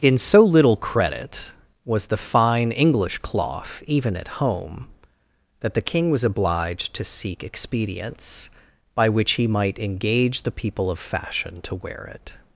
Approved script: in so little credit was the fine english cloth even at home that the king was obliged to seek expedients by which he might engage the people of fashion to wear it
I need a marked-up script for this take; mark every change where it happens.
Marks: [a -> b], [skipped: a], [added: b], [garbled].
in so little credit was the fine english cloth even at home that the king was obliged to seek expedients by which he might engage the people of fashion to wear it